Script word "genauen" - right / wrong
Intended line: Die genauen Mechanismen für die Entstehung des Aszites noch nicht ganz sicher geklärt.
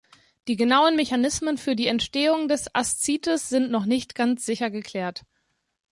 right